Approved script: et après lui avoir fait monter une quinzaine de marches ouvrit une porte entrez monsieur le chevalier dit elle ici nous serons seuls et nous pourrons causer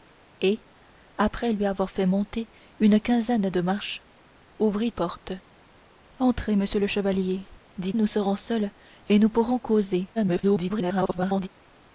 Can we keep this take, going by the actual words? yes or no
no